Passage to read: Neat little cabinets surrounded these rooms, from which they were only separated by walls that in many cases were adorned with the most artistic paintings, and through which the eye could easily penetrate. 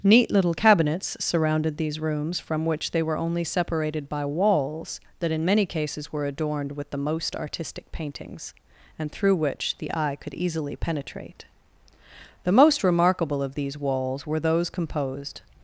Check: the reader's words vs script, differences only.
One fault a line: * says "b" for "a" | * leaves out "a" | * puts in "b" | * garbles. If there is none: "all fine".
* puts in "The most remarkable of these walls were those composed"